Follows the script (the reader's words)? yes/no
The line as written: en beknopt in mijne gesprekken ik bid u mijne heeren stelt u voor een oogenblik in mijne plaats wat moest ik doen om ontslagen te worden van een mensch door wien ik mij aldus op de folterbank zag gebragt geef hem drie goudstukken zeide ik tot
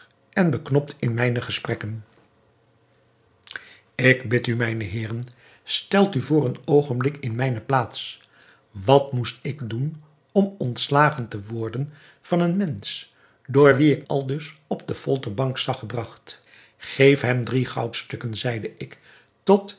no